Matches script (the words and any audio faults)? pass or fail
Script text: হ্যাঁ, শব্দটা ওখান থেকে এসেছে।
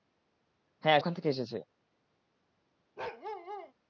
fail